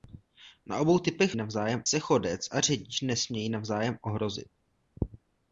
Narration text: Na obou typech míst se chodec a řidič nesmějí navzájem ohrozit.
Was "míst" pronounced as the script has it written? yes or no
no